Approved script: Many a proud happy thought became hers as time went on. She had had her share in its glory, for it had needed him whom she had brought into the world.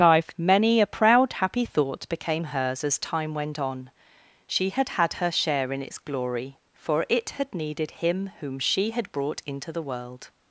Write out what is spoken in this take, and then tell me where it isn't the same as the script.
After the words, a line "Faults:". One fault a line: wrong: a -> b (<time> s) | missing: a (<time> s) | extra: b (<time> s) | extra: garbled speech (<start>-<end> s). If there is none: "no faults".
life Many a proud happy thought became hers as time went on. She had had her share in its glory, for it had needed him whom she had brought into the world.
Faults:
extra: life (0.0 s)